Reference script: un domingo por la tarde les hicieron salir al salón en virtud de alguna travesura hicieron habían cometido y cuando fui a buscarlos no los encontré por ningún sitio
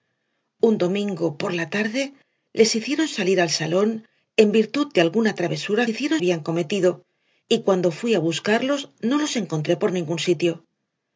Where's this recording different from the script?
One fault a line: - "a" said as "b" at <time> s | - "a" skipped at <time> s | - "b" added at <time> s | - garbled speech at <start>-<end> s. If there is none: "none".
none